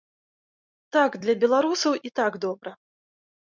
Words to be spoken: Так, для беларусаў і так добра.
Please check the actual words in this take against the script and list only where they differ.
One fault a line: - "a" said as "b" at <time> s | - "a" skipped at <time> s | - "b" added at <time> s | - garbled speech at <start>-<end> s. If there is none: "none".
none